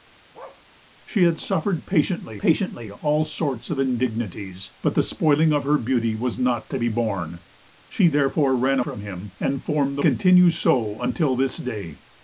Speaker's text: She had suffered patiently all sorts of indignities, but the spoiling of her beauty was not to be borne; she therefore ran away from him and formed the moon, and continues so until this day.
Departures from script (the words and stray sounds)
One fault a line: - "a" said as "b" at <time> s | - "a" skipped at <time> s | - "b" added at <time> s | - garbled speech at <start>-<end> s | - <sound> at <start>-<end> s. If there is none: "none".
- bark at 0.3-0.6 s
- "patiently" added at 2.4 s
- "away" skipped at 8.8 s
- "moon and" skipped at 10.0 s